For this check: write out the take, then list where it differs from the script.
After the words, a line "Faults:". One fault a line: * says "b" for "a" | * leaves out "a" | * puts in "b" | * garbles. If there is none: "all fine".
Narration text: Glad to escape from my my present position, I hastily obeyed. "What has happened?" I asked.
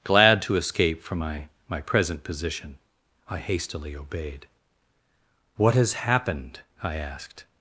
Glad to escape from my my present position, I hastily obeyed. "What has happened?" I asked.
Faults:
all fine